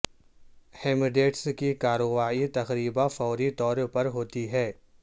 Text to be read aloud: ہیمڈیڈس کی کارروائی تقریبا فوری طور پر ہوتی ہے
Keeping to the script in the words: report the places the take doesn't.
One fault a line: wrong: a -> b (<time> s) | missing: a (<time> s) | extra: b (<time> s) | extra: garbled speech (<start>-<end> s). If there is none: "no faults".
no faults